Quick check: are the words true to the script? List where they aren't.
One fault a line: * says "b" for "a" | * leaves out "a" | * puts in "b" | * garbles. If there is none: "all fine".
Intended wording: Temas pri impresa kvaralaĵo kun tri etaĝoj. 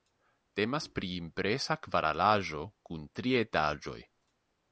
all fine